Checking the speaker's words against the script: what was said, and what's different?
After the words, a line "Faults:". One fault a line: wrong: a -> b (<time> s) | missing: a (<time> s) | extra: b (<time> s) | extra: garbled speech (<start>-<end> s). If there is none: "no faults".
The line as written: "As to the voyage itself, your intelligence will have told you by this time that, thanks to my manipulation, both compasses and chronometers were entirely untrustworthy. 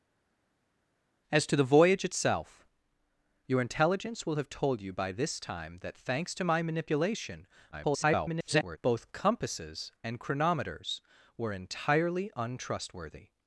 "As to the voyage itself, your intelligence will have told you by this time that, thanks to my manipulation, [garbled] both compasses and chronometers were entirely untrustworthy.
Faults:
extra: garbled speech (7.7-8.8 s)